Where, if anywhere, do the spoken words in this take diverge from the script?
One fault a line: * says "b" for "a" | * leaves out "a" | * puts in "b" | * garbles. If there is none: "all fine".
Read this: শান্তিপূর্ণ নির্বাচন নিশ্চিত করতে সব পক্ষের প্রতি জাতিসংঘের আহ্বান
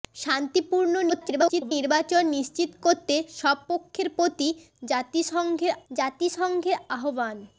* garbles
* puts in "জাতিসংঘের"